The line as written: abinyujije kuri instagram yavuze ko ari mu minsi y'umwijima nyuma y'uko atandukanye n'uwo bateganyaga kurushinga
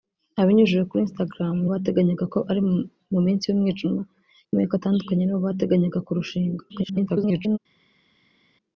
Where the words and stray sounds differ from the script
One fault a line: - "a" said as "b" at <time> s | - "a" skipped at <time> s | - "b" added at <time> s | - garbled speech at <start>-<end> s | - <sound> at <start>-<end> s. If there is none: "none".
- "yavuze" said as "bateganyaga" at 1.7 s
- garbled speech at 6.7-7.6 s